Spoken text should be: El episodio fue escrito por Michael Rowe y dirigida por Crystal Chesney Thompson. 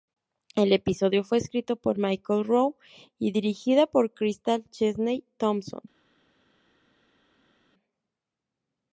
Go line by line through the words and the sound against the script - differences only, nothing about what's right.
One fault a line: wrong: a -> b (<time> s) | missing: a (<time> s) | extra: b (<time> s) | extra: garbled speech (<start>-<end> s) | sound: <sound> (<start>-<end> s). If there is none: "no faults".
no faults